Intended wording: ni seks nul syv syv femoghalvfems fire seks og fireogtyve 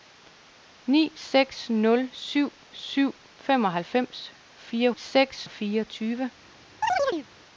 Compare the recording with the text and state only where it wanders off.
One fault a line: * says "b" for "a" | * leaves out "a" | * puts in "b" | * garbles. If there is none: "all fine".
all fine